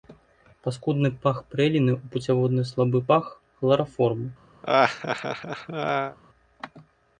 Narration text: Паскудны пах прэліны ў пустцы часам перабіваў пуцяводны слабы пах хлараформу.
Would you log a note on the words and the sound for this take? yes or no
yes